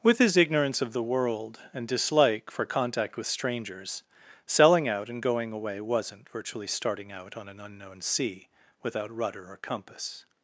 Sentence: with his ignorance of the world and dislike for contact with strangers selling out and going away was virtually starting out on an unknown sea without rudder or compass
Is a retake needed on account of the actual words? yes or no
yes